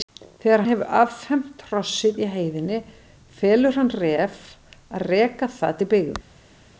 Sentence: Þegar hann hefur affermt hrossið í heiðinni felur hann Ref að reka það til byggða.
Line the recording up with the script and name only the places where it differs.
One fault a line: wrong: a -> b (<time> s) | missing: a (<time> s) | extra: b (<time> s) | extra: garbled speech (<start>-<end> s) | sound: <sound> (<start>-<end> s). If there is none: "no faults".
missing: hann (0.6 s)